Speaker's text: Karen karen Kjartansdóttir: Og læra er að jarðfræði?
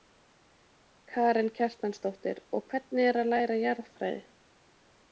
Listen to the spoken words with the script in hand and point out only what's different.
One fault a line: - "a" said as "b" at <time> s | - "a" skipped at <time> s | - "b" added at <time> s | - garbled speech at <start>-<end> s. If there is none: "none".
- "karen" skipped at 1.5 s
- "læra" said as "hvernig" at 2.7 s
- "læra" added at 3.4 s